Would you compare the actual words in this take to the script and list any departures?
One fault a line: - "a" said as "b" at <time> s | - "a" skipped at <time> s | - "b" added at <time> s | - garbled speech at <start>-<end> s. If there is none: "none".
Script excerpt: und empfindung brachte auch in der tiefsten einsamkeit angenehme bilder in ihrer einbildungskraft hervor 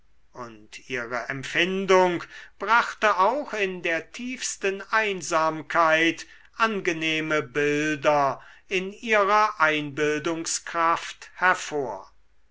- "ihre" added at 0.9 s